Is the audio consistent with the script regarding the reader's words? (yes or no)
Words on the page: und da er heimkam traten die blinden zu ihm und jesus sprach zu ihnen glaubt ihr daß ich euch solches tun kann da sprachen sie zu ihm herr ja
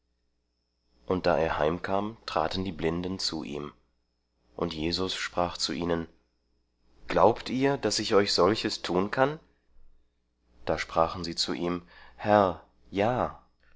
yes